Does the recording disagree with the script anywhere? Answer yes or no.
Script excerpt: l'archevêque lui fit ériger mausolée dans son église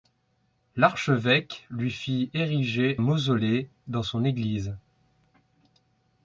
no